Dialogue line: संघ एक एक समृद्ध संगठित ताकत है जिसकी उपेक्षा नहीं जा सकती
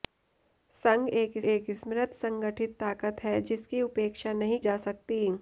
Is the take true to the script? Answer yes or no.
yes